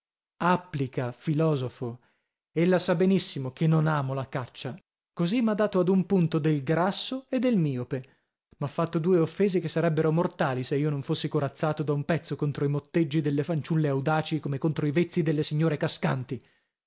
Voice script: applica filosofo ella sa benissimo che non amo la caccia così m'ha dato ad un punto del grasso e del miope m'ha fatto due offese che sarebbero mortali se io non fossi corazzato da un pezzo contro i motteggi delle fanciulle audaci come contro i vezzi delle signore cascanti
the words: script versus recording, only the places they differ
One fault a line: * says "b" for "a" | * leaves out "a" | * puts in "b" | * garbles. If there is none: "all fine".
all fine